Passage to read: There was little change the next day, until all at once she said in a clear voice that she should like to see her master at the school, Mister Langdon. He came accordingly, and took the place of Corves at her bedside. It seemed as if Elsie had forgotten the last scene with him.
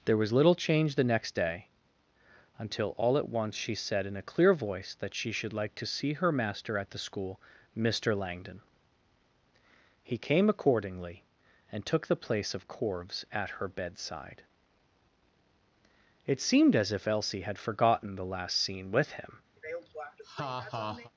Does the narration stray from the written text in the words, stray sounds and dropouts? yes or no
yes